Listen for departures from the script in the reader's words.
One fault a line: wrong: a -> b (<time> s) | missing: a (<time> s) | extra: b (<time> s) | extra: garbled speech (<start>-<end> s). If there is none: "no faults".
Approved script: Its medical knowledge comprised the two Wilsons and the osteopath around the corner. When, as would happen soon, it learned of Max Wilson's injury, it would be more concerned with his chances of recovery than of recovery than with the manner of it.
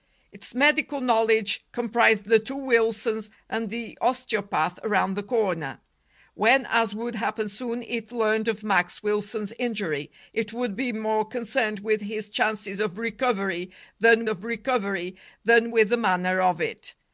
no faults